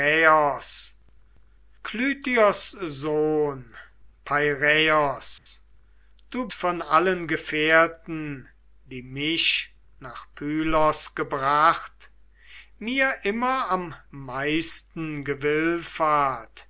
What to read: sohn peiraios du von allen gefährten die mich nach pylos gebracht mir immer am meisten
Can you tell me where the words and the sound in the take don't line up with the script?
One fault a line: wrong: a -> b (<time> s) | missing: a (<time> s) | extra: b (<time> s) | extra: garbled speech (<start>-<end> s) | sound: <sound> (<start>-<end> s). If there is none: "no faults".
sound: dropout (5.4-5.5 s)